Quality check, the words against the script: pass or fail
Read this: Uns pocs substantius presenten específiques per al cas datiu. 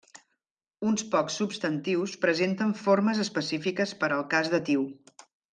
fail